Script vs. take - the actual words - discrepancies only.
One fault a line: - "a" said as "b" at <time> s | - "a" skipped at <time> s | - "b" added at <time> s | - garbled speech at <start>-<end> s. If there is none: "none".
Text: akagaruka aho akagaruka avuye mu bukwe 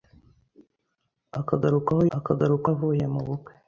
none